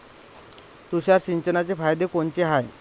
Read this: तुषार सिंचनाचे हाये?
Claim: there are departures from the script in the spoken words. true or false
true